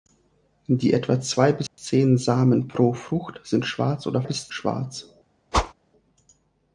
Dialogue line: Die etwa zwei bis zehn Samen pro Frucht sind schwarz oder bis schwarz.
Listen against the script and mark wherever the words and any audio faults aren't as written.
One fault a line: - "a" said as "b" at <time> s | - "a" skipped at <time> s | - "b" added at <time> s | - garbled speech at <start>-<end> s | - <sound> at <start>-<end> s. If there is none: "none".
- dropout at 1.7-1.8 s
- whoosh at 5.5-5.7 s